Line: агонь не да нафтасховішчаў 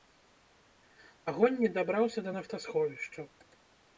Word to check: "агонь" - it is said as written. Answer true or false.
true